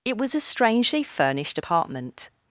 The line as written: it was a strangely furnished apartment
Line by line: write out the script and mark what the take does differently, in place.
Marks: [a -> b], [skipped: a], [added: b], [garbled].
it was a strangely furnished apartment